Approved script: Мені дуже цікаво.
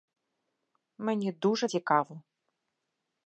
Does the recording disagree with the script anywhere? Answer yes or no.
no